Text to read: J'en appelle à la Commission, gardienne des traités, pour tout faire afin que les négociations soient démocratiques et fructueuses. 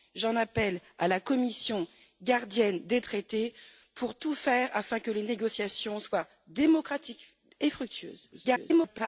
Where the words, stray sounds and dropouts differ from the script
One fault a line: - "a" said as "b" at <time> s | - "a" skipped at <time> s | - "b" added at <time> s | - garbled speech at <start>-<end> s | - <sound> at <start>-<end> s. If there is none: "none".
- garbled speech at 8.3-9.1 s